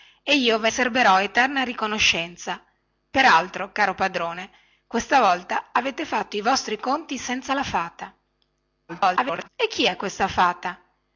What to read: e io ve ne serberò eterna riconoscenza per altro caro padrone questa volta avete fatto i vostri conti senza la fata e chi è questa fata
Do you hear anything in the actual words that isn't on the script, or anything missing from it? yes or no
yes